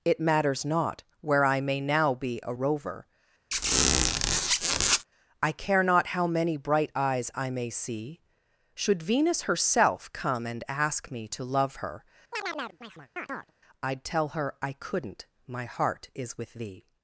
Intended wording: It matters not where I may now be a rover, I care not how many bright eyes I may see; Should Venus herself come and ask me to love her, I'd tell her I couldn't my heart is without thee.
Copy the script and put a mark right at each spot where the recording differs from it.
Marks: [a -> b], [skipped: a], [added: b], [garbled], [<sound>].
It matters not where I may now be a rover, [squeak] I care not how many bright eyes I may see; Should Venus herself come and ask me to love her, [chirp] I'd tell her I couldn't my heart is [without -> with] thee.